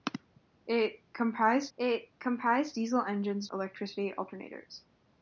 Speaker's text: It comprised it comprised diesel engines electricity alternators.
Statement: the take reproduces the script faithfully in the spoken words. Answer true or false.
true